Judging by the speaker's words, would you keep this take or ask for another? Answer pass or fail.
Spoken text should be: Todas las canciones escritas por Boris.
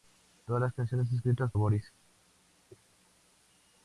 fail